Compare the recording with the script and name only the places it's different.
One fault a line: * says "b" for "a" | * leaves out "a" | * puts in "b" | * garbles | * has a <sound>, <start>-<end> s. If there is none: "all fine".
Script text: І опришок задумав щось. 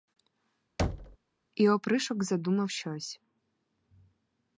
* has a thud, 0.8-1.2 s